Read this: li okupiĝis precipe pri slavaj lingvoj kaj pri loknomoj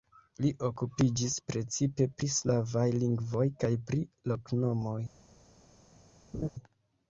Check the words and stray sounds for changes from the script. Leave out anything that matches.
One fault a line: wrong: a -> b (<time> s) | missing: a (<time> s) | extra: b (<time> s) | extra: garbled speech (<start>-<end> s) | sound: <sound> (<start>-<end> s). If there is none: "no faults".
sound: laugh (6.3-6.5 s)